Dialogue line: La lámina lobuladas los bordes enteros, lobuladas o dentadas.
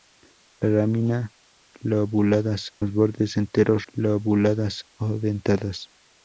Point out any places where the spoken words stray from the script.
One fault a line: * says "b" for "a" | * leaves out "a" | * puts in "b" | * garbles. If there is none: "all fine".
all fine